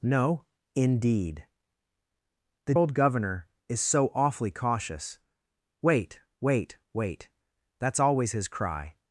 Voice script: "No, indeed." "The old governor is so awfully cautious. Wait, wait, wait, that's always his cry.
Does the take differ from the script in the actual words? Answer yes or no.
no